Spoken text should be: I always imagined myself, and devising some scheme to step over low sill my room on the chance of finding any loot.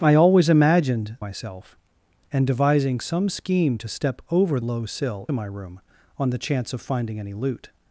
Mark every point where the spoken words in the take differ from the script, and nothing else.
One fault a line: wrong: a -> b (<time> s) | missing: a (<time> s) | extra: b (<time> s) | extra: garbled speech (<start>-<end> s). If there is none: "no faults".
no faults